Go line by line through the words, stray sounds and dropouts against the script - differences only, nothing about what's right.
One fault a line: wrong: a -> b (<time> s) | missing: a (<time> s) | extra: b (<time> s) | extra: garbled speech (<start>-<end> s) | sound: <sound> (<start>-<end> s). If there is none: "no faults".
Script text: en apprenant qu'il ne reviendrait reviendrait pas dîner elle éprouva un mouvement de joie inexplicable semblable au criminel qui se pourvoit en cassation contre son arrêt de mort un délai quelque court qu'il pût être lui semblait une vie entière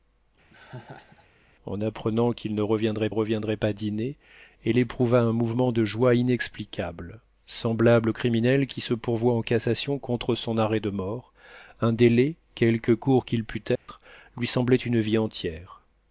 sound: laugh (0.5-1.3 s)
sound: dropout (13.8-13.9 s)